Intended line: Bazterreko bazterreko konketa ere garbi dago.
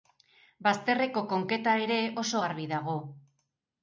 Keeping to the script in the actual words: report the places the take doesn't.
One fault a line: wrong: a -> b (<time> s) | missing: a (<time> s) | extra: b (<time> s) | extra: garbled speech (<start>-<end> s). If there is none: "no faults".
missing: bazterreko (1.2 s)
extra: oso (2.2 s)